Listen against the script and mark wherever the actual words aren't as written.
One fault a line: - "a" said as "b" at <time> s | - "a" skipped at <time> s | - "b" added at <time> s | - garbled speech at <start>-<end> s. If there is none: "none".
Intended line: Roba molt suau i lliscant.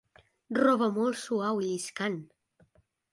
none